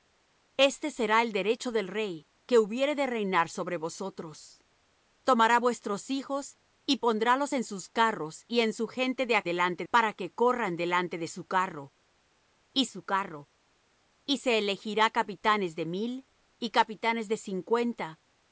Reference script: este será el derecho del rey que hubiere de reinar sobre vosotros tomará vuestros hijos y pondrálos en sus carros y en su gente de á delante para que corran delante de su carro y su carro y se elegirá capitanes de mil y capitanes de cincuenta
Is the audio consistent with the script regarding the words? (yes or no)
yes